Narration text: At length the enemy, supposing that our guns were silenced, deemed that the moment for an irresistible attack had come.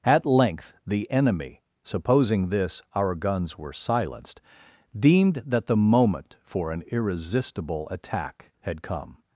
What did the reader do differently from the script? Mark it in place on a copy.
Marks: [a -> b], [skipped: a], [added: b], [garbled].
At length the enemy, supposing [that -> this] our guns were silenced, deemed that the moment for an irresistible attack had come.